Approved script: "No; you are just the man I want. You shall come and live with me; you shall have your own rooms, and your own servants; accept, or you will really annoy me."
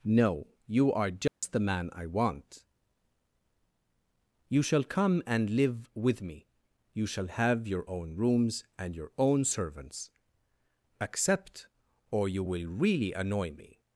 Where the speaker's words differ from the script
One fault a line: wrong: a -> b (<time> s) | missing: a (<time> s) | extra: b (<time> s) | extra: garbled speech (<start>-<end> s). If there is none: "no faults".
no faults